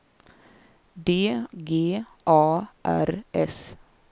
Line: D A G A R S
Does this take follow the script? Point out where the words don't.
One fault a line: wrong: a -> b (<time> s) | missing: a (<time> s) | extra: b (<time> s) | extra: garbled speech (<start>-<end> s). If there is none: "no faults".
missing: A (1.1 s)